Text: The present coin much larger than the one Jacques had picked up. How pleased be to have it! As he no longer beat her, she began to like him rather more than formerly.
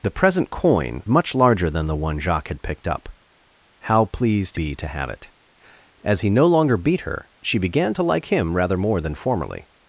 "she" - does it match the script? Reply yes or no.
yes